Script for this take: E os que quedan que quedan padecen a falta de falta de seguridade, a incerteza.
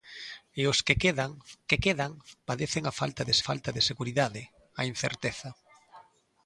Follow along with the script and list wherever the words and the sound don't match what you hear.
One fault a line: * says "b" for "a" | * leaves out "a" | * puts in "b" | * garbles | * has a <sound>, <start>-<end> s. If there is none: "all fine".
all fine